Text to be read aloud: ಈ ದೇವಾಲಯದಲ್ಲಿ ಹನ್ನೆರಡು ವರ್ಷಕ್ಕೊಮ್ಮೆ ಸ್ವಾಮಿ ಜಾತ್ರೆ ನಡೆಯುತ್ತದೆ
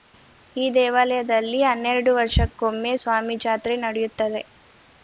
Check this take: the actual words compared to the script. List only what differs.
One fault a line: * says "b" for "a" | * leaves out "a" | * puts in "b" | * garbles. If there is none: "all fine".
all fine